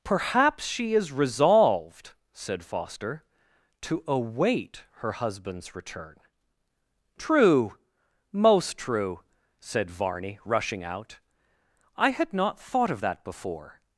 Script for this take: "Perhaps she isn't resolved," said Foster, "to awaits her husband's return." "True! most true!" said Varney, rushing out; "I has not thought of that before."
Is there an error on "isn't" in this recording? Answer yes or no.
yes